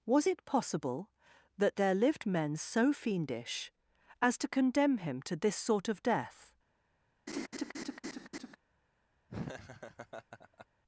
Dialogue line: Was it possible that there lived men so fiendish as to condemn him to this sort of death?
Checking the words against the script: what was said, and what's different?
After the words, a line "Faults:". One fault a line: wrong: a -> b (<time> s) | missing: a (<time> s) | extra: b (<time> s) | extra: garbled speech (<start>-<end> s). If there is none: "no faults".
Was it possible that there lived men so fiendish as to condemn him to this sort of death?
Faults:
no faults